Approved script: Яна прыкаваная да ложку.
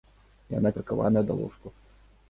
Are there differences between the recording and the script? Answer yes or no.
no